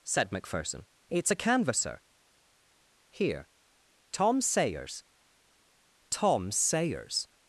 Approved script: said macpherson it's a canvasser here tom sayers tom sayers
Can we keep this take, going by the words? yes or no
yes